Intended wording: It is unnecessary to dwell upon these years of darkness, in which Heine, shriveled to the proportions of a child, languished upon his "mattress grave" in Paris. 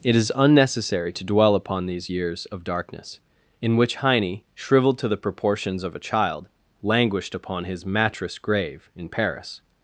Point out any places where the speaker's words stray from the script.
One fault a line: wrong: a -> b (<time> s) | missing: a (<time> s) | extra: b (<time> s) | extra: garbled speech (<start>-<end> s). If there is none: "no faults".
no faults